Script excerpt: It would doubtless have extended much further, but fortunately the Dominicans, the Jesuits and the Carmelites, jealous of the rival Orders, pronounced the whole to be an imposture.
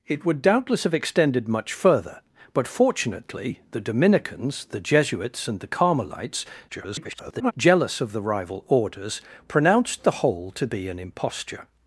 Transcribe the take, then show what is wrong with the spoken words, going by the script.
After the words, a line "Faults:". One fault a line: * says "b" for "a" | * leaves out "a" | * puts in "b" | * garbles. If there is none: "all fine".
It would doubtless have extended much further, but fortunately the Dominicans, the Jesuits and the Carmelites, [garbled] jealous of the rival Orders, pronounced the whole to be an imposture.
Faults:
* garbles